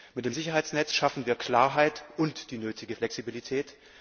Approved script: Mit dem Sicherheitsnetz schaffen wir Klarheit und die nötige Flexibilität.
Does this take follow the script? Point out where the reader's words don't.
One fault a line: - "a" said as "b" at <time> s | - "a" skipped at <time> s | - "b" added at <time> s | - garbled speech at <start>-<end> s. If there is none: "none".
none